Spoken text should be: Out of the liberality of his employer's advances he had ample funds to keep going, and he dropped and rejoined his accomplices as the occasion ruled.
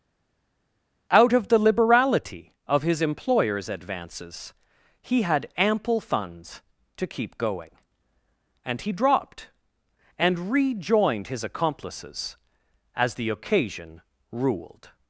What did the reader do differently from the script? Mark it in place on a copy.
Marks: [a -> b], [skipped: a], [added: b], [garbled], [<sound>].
Out of the liberality of his employer's advances he had ample funds to keep going, and he dropped and rejoined his accomplices as the occasion ruled.